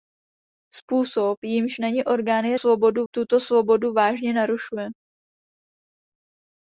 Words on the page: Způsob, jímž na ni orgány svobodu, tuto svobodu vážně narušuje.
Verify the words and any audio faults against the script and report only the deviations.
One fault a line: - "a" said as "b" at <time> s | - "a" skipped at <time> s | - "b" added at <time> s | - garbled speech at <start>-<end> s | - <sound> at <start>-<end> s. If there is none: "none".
none